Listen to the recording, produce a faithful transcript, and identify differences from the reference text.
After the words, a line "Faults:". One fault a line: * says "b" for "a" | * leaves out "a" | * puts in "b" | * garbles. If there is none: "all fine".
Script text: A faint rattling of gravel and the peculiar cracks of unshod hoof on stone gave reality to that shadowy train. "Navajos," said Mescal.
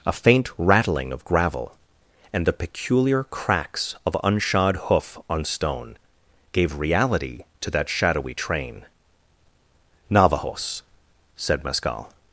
A faint rattling of gravel and the peculiar cracks of unshod hoof on stone gave reality to that shadowy train. "Navajos," said Mescal.
Faults:
all fine